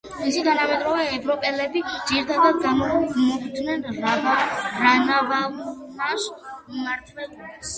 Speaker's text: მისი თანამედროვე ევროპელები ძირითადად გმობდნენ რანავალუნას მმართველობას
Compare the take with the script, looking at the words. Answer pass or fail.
pass